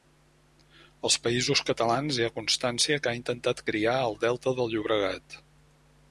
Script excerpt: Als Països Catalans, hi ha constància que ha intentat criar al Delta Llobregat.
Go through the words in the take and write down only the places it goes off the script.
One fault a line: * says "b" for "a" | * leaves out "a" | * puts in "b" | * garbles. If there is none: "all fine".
* puts in "del"